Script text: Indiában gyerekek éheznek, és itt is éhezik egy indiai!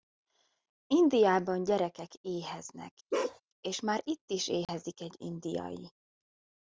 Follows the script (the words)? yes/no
no